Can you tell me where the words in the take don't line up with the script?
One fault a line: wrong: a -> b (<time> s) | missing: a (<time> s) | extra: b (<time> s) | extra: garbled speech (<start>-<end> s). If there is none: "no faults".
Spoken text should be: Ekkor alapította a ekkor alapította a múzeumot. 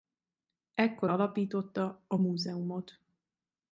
missing: ekkor alapította a (2.2 s)